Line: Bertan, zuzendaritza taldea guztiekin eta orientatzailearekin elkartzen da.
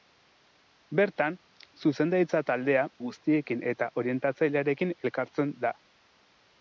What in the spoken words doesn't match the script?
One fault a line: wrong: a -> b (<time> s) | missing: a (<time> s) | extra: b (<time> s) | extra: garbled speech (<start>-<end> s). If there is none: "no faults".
no faults